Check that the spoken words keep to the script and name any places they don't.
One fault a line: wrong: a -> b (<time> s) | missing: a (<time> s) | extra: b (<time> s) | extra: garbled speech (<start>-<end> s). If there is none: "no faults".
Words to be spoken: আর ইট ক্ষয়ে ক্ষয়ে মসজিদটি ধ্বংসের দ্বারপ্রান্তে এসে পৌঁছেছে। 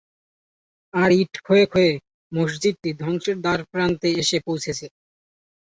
no faults